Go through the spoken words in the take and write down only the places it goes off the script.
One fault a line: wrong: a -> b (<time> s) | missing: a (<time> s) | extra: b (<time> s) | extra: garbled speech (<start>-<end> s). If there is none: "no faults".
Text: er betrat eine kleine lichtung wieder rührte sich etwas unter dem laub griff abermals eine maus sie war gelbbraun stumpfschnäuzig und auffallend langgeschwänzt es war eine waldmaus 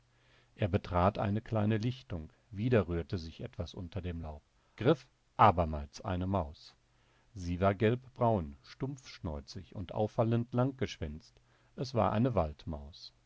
no faults